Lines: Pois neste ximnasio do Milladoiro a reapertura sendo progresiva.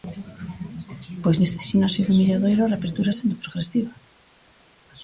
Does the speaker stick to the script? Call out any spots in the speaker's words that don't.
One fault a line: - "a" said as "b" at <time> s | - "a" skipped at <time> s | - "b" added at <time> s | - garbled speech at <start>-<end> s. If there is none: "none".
none